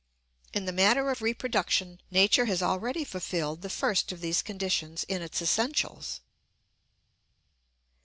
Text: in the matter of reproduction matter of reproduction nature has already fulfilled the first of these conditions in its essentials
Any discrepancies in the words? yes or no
yes